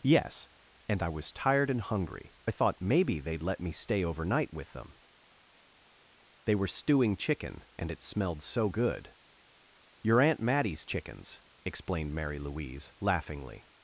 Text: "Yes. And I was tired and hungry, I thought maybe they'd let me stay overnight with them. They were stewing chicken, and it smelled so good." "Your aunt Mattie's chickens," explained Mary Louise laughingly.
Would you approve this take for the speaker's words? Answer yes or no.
yes